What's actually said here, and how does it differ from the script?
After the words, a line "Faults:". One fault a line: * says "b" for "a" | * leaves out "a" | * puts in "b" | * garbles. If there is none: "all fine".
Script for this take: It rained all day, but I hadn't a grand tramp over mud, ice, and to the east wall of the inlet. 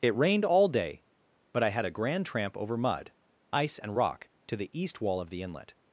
It rained all day, but I had a grand tramp over mud, ice, and rock to the east wall of the inlet.
Faults:
* says "had" for "hadn't"
* puts in "rock"